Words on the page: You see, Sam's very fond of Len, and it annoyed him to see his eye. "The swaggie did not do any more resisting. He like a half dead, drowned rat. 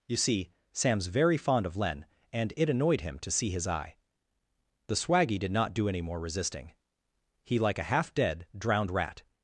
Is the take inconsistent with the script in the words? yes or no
no